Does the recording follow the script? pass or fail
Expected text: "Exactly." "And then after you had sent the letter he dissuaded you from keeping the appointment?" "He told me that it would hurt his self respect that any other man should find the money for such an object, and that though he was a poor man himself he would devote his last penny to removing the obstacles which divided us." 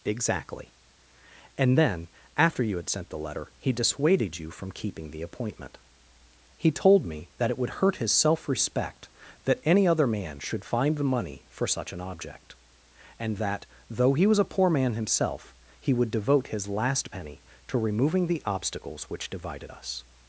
pass